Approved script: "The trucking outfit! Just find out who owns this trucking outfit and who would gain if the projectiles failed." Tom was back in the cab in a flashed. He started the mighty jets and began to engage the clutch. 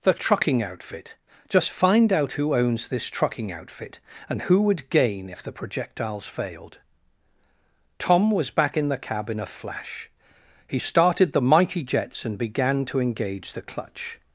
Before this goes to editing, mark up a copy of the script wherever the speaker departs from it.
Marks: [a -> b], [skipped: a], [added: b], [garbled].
"The trucking outfit! Just find out who owns this trucking outfit and who would gain if the projectiles failed." Tom was back in the cab in a [flashed. -> flash] He started the mighty jets and began to engage the clutch.